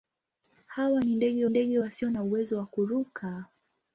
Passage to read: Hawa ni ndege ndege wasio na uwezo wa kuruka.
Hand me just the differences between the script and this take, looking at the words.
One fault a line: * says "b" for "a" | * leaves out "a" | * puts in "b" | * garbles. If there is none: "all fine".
all fine